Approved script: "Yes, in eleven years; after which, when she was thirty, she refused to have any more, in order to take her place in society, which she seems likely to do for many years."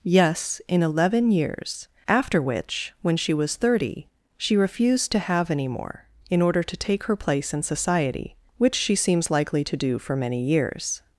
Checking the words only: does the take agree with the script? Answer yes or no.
yes